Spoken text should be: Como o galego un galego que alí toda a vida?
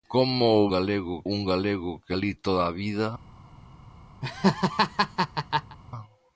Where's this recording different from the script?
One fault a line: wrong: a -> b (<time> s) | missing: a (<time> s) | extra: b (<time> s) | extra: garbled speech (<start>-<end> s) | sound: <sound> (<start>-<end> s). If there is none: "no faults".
sound: laugh (4.2-5.8 s)